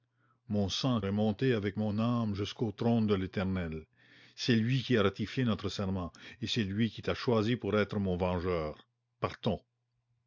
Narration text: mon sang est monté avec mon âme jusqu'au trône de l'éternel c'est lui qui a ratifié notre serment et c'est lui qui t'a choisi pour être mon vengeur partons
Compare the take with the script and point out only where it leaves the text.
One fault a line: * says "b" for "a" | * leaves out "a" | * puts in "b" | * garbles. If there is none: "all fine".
all fine